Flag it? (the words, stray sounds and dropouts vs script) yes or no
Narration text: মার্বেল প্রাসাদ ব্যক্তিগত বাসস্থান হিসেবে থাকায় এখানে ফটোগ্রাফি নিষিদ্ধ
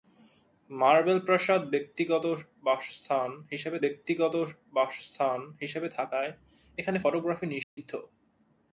yes